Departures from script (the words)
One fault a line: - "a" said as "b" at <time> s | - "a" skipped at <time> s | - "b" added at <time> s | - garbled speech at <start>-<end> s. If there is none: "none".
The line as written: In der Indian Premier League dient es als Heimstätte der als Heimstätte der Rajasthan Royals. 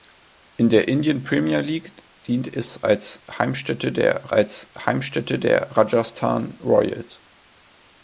none